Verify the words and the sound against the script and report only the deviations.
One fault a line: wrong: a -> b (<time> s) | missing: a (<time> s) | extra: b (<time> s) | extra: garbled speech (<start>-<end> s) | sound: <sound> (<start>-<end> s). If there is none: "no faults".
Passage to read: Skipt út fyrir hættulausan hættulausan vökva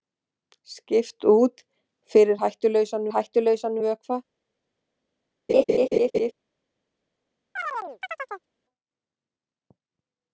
sound: laugh (5.5-6.3 s)
sound: chirp (7.6-8.5 s)